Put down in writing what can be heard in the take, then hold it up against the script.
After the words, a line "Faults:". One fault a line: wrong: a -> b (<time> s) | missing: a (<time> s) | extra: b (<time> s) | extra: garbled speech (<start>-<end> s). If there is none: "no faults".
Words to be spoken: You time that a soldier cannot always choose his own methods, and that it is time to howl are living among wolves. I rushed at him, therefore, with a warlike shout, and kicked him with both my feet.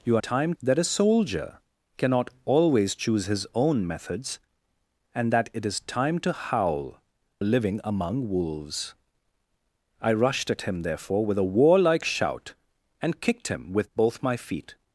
You time that a soldier cannot always choose his own methods, and that it is time to howl are living among wolves. I rushed at him, therefore, with a warlike shout, and kicked him with both my feet.
Faults:
no faults